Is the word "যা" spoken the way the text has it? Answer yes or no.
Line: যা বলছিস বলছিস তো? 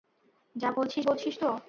yes